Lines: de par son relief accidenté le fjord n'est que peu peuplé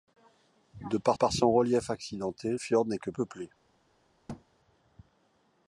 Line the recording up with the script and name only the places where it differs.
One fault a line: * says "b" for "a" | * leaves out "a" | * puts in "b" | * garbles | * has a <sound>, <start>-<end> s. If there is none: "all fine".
* puts in "par"
* leaves out "le"
* leaves out "peu"
* has a thud, 4.3-4.4 s